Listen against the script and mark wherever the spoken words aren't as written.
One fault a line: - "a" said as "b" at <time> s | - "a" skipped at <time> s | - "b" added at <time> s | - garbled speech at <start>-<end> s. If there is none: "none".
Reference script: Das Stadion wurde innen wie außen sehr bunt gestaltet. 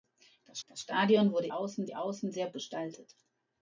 - "das" added at 0.7 s
- "innen" said as "außen" at 1.5 s
- "bunt" skipped at 2.5 s